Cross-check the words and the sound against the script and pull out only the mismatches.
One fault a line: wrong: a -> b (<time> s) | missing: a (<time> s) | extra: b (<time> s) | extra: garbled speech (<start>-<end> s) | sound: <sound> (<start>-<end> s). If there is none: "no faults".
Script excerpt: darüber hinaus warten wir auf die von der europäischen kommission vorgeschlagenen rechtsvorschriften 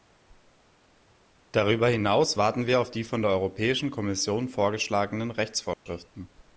sound: dropout (5.7-5.9 s)